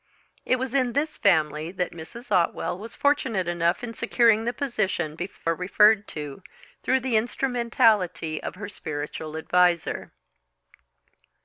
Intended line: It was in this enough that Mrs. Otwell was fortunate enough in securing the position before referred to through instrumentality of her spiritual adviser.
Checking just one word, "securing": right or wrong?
right